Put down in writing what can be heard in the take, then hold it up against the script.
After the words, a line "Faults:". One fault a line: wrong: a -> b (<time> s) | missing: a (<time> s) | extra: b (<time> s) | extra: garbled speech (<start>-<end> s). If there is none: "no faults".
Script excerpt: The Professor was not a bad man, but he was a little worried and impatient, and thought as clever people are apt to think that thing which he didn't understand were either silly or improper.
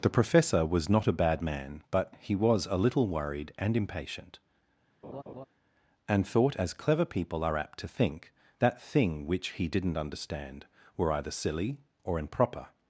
The Professor was not a bad man, but he was a little worried and impatient, and thought as clever people are apt to think that thing which he didn't understand were either silly or improper.
Faults:
no faults